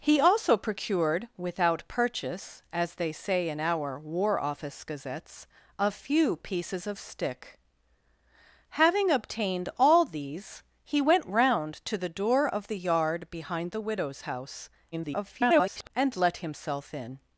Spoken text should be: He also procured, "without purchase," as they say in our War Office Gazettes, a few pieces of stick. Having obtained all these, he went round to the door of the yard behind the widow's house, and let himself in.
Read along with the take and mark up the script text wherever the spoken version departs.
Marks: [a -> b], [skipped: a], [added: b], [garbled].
He also procured, "without purchase," as they say in our War Office Gazettes, a few pieces of stick. Having obtained all these, he went round to the door of the yard behind the widow's house, [garbled] and let himself in.